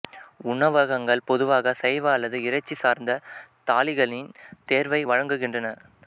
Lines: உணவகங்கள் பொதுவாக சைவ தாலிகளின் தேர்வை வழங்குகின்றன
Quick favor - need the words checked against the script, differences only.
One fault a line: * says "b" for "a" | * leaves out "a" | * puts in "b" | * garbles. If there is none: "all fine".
* puts in "அல்லது இறைச்சி சார்ந்த"